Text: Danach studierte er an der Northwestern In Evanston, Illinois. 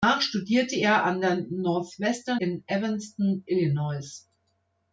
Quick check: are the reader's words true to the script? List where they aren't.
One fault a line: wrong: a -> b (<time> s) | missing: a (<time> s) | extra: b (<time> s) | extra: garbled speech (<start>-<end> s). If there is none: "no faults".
no faults